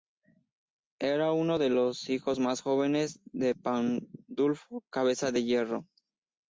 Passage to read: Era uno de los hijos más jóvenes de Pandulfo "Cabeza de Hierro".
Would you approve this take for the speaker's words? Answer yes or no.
yes